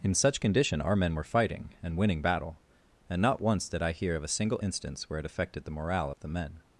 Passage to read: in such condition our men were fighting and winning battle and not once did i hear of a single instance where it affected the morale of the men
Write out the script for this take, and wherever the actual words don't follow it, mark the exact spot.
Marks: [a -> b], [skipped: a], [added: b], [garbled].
in such condition our men were fighting and winning battle and not once did i hear of a single instance where it affected the morale of the men